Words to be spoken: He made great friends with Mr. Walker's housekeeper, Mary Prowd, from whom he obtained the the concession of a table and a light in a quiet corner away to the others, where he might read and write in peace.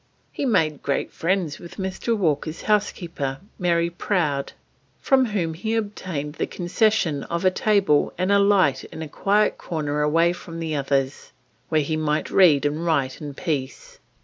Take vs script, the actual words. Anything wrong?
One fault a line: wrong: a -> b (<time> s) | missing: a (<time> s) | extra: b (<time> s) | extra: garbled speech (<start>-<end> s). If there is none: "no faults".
missing: the (6.5 s)
wrong: to -> from (10.3 s)